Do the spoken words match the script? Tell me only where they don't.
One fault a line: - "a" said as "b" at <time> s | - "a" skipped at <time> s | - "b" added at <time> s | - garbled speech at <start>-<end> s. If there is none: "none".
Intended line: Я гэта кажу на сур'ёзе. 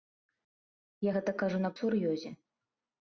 none